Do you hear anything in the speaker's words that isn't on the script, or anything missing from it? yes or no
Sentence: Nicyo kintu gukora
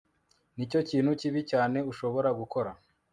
yes